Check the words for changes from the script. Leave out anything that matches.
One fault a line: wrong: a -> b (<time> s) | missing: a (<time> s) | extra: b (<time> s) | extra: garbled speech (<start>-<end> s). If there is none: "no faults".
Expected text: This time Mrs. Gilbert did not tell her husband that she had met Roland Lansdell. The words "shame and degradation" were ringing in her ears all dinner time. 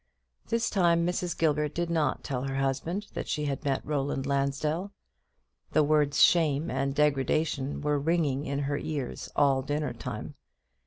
no faults